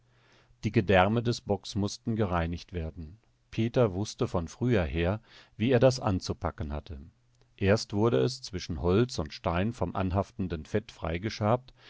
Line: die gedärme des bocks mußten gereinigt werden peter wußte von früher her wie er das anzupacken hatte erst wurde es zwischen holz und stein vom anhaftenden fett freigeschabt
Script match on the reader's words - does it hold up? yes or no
yes